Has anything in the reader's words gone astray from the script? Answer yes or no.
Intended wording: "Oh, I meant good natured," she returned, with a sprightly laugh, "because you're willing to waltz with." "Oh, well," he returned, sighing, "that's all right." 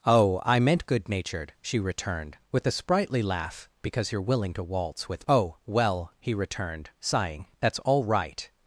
no